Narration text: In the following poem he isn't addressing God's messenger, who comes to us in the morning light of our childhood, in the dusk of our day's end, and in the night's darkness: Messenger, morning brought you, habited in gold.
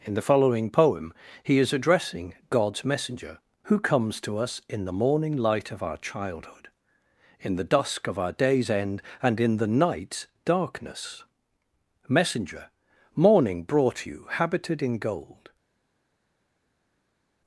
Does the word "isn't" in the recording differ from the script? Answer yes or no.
yes